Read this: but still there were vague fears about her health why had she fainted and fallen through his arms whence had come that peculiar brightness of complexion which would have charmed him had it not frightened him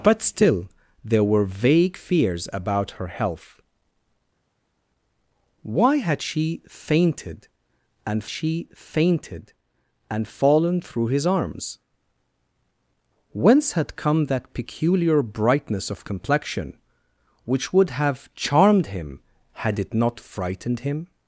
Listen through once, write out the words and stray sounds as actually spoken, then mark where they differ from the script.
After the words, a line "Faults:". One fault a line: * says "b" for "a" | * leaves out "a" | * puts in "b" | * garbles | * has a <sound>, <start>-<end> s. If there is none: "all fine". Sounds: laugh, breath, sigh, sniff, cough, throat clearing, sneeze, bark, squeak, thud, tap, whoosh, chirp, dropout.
but still there were vague fears about her health why had she fainted and she fainted and fallen through his arms whence had come that peculiar brightness of complexion which would have charmed him had it not frightened him
Faults:
* puts in "she fainted and"